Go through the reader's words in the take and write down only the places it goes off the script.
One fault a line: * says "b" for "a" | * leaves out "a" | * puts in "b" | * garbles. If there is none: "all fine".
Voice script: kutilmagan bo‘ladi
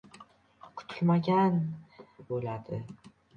all fine